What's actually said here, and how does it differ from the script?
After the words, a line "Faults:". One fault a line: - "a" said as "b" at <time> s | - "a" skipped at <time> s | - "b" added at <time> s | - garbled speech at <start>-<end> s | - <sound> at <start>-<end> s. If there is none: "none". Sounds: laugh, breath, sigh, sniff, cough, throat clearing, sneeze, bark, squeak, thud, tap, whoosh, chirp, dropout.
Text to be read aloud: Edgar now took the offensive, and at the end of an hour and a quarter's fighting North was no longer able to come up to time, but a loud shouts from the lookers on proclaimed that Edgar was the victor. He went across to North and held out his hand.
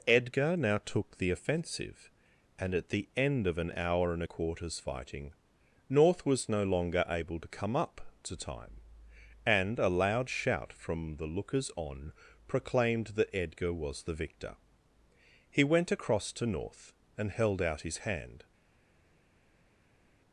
Edgar now took the offensive, and at the end of an hour and a quarter's fighting North was no longer able to come up to time, and a loud shout from the lookers on proclaimed that Edgar was the victor. He went across to North and held out his hand.
Faults:
- "but" said as "and" at 9.5 s
- "shouts" said as "shout" at 10.3 s